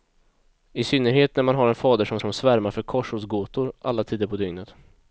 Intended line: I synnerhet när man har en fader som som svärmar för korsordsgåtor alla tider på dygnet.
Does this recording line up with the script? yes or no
yes